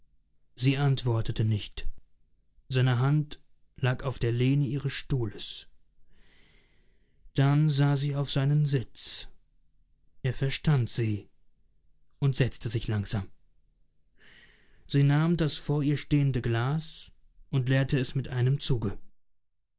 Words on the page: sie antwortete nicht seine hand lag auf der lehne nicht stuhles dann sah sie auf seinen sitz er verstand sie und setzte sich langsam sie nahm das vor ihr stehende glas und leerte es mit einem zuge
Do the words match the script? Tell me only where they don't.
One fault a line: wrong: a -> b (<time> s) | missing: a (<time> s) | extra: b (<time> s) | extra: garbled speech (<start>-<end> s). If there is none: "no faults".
wrong: nicht -> ihres (4.7 s)